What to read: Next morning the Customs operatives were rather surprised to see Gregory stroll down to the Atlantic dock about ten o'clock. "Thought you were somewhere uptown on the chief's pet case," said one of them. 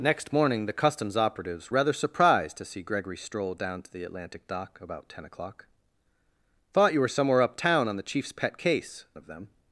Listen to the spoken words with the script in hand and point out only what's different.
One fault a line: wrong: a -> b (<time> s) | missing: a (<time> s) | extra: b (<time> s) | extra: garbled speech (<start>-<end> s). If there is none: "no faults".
missing: were (1.7 s)
missing: said one (9.0 s)